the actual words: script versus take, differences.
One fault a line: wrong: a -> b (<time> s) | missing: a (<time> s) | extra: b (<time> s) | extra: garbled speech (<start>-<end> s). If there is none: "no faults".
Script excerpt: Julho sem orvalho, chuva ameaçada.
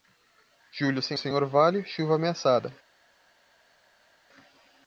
extra: sem (1.1 s)